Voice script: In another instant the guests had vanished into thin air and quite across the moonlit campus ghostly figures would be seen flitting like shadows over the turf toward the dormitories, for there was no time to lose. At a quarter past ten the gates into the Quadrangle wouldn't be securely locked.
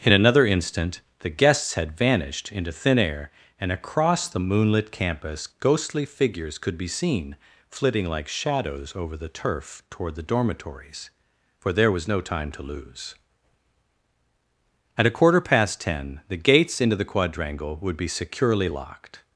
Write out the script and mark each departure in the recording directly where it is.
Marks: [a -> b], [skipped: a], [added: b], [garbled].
In another instant the guests had vanished into thin air and [skipped: quite] across the moonlit campus ghostly figures [would -> could] be seen flitting like shadows over the turf toward the dormitories, for there was no time to lose. At a quarter past ten the gates into the Quadrangle [wouldn't -> would] be securely locked.